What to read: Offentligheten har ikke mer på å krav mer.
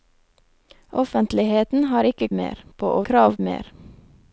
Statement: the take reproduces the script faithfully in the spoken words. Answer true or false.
true